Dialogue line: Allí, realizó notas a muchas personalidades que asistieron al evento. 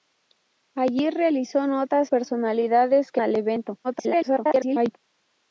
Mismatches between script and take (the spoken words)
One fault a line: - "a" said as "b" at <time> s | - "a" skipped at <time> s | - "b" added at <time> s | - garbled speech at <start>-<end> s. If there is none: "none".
- "a muchas" skipped at 2.1 s
- "asistieron" skipped at 3.2 s
- garbled speech at 3.8-5.0 s